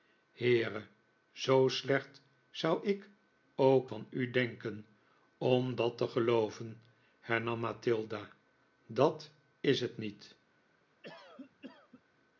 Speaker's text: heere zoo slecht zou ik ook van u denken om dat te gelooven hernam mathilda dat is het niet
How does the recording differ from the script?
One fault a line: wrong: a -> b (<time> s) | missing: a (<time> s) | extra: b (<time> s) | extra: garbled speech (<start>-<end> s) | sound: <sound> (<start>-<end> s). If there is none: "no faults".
sound: cough (11.0-12.0 s)